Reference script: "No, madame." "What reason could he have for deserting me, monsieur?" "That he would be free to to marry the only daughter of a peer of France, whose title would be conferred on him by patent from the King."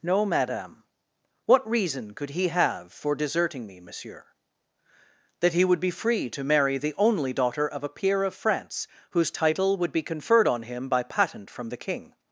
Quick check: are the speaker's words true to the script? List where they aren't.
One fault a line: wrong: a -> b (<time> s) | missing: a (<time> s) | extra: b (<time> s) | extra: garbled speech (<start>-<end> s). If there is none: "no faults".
missing: to (6.4 s)